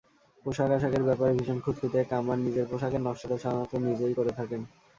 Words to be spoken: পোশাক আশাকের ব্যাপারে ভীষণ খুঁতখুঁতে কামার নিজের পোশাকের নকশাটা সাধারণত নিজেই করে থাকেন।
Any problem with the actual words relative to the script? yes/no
no